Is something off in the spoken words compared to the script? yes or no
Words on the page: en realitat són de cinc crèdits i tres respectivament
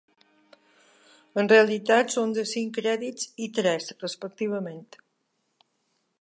no